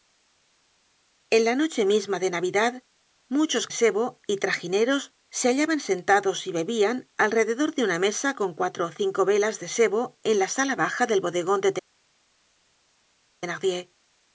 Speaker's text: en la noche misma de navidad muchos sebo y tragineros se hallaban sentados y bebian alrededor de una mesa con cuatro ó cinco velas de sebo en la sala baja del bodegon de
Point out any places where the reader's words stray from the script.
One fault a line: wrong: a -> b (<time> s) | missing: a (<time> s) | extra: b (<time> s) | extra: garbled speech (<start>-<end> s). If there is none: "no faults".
no faults